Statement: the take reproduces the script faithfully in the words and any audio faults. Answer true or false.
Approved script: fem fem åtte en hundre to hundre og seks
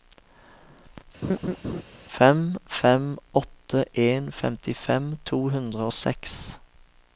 false